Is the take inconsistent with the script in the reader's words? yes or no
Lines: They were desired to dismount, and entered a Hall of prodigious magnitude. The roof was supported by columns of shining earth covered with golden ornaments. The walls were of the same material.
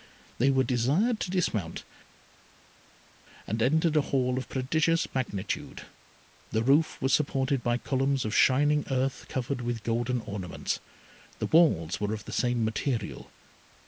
no